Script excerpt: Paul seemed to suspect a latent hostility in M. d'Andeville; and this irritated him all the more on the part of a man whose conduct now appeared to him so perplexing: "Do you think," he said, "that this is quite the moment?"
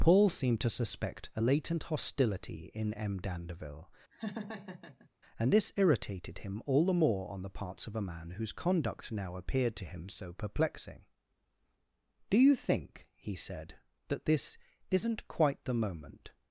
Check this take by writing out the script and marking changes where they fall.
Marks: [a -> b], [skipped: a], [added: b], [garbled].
Paul seemed to suspect a latent hostility in M. d'Andeville; and this irritated him all the more on the [part -> parts] of a man whose conduct now appeared to him so perplexing: "Do you think," he said, "that this [is -> isn't] quite the moment?"